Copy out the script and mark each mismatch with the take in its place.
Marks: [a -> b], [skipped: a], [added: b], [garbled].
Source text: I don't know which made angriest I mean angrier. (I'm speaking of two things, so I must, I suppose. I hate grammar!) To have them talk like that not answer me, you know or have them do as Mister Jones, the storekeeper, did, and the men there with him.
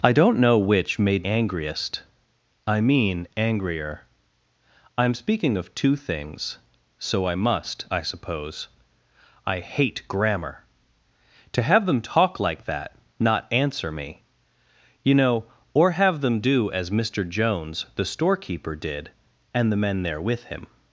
I don't know which made angriest I mean angrier. (I'm speaking of two things, so I must, I suppose. I hate grammar!) To have them talk like that not answer me, you know or have them do as Mister Jones, the storekeeper, did, and the men there with him.